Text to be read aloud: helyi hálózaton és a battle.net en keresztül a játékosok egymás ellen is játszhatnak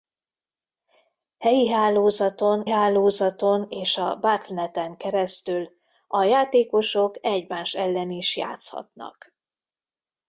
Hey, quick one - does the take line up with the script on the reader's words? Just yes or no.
no